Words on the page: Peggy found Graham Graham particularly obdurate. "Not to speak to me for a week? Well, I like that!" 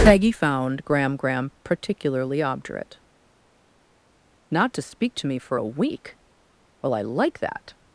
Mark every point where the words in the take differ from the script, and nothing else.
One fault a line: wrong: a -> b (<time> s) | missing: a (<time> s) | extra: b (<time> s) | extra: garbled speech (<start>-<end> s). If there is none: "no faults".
no faults